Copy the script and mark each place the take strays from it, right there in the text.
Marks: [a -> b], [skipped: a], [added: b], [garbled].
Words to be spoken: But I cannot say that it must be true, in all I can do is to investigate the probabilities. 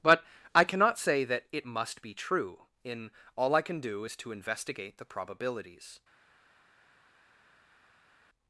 But I cannot say that it must be true, in all I can do is to investigate the probabilities.